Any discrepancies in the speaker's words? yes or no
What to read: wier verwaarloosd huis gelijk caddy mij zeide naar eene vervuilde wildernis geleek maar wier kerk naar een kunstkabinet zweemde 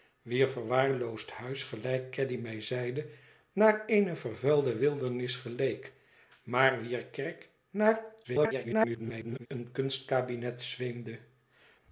yes